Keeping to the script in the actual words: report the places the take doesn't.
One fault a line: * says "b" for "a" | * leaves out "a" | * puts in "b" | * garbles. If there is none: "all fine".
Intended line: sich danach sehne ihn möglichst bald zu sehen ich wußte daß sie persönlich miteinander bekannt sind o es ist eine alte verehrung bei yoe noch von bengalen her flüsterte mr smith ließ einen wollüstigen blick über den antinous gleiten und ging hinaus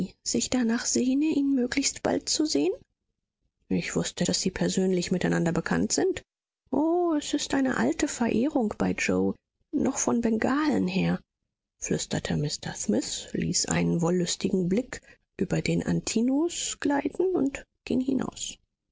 all fine